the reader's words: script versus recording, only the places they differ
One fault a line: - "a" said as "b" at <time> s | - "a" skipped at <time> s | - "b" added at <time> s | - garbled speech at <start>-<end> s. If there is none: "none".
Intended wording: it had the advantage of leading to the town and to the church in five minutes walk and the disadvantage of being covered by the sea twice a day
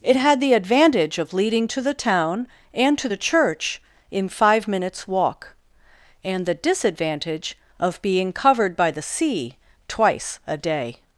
none